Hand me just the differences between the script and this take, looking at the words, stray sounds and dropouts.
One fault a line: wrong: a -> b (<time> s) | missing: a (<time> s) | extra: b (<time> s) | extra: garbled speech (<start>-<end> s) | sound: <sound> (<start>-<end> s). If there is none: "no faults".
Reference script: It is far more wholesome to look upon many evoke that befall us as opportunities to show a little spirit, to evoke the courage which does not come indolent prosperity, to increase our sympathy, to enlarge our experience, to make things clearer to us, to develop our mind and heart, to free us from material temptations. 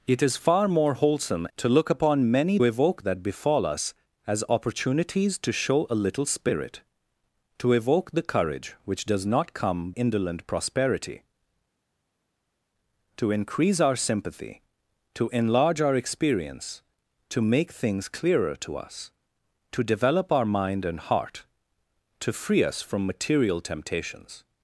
no faults